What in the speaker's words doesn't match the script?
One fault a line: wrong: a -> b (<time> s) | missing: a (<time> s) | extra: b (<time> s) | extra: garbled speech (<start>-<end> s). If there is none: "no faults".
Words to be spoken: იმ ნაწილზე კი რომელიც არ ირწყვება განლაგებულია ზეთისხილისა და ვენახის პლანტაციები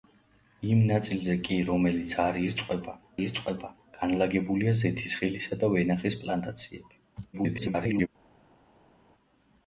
extra: ირწყვება (3.2 s)
extra: garbled speech (7.3-8.1 s)